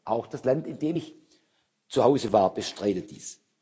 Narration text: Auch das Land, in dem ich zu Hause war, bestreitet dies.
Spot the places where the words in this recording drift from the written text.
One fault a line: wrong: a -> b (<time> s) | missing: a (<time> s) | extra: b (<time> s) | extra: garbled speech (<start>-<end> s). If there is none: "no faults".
no faults